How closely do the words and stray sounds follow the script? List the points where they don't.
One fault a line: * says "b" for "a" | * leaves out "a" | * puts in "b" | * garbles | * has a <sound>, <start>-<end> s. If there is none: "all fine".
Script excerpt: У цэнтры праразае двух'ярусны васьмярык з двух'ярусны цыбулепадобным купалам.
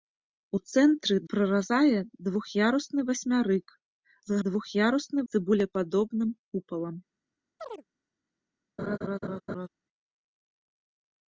* has a chirp, 7.6-7.8 s
* has a laugh, 8.8-9.7 s